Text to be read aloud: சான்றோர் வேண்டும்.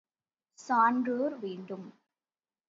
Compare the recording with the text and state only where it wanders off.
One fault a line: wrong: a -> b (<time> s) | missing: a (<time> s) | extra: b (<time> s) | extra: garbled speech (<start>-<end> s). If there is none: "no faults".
no faults